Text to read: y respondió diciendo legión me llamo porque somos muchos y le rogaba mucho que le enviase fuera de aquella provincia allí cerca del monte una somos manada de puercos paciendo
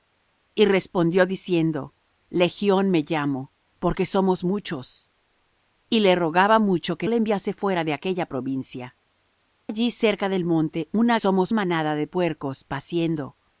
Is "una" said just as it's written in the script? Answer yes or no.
yes